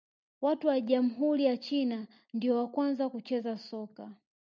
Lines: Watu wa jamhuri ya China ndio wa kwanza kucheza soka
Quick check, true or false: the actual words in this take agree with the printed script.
true